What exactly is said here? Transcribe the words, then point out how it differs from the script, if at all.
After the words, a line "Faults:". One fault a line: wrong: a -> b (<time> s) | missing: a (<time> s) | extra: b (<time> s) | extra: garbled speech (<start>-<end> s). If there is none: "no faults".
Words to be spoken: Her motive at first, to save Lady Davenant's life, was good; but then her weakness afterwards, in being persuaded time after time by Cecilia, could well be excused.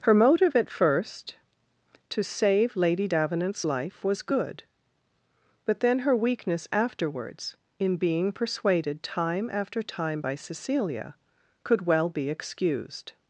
Her motive at first, to save Lady Davenant's life, was good; but then her weakness afterwards, in being persuaded time after time by Cecilia, could well be excused.
Faults:
no faults